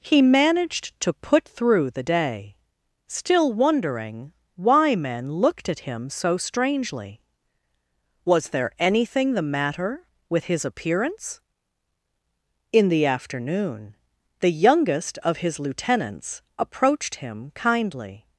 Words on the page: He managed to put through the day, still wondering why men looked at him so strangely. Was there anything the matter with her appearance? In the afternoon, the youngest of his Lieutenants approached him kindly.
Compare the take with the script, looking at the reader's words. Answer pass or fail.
fail